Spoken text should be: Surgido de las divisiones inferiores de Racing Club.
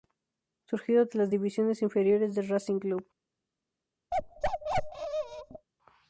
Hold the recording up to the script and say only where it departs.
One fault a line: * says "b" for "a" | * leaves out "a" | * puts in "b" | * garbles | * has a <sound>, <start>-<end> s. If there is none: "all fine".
* has a bark, 4.1-5.7 s